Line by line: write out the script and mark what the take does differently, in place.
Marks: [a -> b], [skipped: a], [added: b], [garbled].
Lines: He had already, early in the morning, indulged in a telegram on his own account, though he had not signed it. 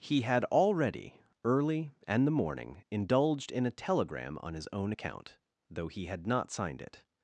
He had already, early [in -> and] the morning, indulged in a telegram on his own account, though he had not signed it.